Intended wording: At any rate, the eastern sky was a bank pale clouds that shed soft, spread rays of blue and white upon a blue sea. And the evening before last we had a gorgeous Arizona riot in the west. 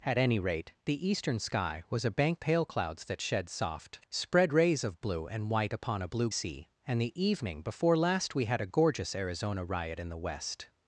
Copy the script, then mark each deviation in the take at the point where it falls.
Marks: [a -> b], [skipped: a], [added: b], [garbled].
At any rate, the eastern sky was a bank pale clouds that shed soft, spread rays of blue and white upon a blue sea. And the evening before last we had a gorgeous Arizona riot in the west.